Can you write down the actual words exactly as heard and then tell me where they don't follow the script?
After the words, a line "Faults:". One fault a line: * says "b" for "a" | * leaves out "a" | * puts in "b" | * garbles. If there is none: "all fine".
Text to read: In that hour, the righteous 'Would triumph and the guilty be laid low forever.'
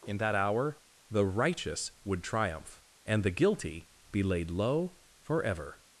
In that hour, the righteous 'Would triumph and the guilty be laid low forever.'
Faults:
all fine